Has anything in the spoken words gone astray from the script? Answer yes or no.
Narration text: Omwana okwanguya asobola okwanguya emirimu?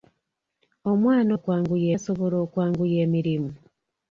no